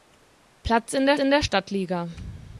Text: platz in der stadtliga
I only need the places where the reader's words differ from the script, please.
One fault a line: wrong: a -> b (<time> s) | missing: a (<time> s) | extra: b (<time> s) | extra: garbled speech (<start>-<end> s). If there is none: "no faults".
extra: in der (1.2 s)